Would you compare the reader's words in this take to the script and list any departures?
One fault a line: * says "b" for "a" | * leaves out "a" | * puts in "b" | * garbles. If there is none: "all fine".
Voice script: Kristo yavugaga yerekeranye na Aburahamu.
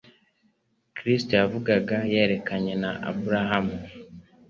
all fine